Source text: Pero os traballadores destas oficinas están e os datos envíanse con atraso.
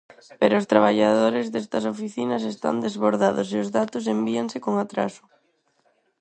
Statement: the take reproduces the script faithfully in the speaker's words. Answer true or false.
false